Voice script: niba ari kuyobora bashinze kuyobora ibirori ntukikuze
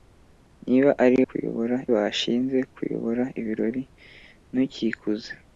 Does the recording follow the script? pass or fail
pass